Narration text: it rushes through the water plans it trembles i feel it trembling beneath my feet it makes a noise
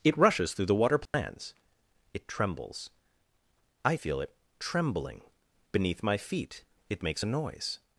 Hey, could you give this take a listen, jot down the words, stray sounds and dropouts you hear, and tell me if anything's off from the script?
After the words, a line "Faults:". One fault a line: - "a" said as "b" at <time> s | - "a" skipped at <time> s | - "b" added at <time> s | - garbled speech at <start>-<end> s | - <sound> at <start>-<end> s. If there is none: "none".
it rushes through the water plans it trembles i feel it trembling beneath my feet it makes a noise
Faults:
- dropout at 1.1-1.1 s